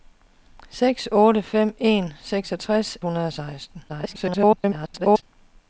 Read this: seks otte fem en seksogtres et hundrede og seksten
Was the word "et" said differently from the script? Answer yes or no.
yes